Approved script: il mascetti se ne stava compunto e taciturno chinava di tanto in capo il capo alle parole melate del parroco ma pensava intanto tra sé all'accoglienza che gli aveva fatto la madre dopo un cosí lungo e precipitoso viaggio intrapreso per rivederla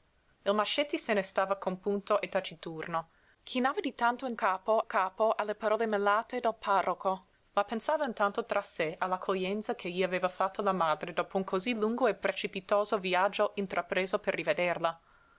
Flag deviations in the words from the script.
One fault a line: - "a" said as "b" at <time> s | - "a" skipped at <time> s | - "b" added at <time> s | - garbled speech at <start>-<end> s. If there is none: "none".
none